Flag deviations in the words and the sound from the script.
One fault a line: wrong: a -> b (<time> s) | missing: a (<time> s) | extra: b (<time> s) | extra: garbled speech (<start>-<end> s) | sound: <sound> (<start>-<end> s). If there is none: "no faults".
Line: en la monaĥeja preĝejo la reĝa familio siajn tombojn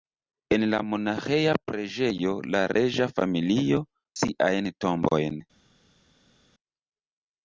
no faults